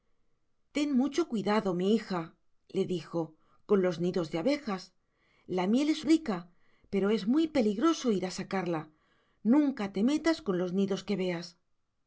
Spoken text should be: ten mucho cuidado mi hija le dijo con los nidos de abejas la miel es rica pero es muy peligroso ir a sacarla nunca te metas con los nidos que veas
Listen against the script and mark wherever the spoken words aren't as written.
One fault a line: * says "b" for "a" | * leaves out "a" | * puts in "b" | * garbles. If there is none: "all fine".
all fine